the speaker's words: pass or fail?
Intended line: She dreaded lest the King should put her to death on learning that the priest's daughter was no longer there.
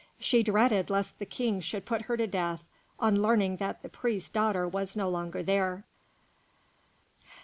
pass